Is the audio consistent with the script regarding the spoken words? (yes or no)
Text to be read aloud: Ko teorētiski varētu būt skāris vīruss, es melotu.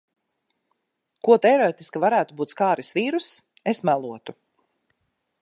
yes